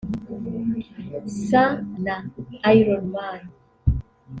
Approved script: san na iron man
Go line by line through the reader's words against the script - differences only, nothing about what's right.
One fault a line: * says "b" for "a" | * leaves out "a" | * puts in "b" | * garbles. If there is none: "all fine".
all fine